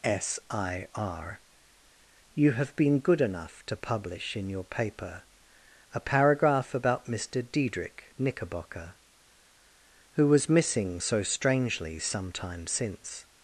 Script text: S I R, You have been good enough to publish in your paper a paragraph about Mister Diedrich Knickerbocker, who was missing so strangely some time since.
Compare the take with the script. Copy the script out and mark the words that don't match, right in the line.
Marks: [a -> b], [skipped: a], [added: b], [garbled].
S I R, You have been good enough to publish in your paper a paragraph about Mister Diedrich Knickerbocker, who was missing so strangely some time since.